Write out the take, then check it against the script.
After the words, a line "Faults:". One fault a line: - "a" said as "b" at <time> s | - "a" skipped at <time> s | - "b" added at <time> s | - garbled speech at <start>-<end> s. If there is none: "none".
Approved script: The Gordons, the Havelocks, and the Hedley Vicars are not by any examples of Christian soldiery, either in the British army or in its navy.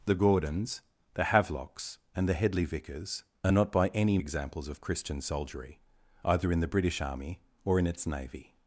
The Gordons, the Havelocks, and the Hedley Vicars are not by any examples of Christian soldiery, either in the British army or in its navy.
Faults:
none